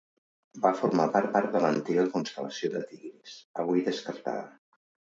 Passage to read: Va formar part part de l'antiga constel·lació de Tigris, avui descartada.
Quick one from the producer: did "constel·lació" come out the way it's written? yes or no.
yes